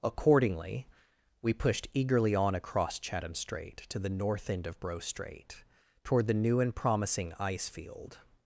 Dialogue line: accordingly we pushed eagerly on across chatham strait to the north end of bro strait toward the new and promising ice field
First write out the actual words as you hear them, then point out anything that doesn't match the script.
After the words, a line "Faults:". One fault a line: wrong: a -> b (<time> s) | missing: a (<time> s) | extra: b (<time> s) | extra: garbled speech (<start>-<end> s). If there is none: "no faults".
accordingly we pushed eagerly on across chatham strait to the north end of bro strait toward the new and promising ice field
Faults:
no faults